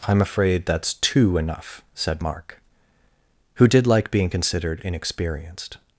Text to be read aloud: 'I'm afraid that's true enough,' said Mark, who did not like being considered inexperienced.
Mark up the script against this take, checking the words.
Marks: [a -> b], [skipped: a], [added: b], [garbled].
'I'm afraid that's [true -> two] enough,' said Mark, who did [skipped: not] like being considered inexperienced.